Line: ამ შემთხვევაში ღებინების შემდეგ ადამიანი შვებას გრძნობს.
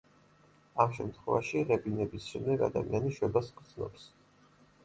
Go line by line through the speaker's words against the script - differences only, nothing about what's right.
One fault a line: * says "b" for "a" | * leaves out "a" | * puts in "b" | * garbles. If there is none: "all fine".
all fine